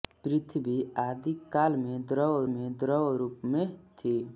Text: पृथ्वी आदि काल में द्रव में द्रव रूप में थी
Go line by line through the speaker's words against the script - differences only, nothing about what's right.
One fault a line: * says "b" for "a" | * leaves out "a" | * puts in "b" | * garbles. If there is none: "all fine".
all fine